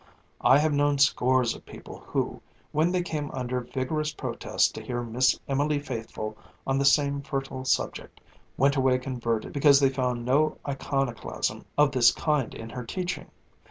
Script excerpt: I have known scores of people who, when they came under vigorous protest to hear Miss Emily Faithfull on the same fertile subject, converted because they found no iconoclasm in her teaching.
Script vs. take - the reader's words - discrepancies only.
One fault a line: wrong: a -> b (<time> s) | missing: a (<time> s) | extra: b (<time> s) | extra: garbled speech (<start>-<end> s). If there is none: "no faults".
extra: went away (8.6 s)
extra: of this kind (11.8 s)